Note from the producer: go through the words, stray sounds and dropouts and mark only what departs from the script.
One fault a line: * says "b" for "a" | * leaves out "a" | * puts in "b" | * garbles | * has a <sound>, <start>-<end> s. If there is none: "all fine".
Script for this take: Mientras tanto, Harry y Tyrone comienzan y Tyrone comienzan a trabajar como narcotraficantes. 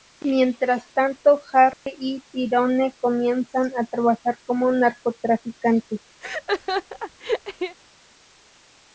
* has a dropout, 1.7-1.9 s
* leaves out "y Tyrone comienzan"
* has a laugh, 6.2-7.8 s